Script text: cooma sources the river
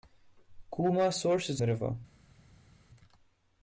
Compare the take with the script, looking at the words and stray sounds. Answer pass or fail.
pass